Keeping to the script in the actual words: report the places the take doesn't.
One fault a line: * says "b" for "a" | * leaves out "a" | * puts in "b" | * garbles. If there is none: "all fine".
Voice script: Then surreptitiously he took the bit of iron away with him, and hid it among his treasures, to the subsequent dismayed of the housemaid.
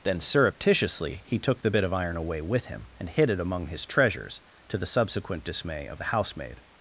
* says "dismay" for "dismayed"